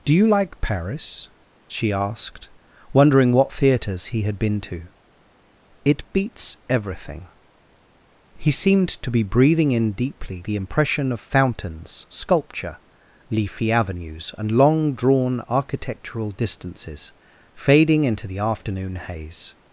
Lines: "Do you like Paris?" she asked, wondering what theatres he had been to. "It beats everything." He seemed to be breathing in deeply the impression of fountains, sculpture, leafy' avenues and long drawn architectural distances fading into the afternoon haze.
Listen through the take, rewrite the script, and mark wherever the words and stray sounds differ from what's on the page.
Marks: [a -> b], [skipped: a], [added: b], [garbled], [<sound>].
"Do you like Paris?" she asked, wondering what theatres he had been to. "It beats everything." He seemed to be breathing in deeply the impression of fountains, sculpture, leafy' avenues and long drawn architectural distances fading into the afternoon haze.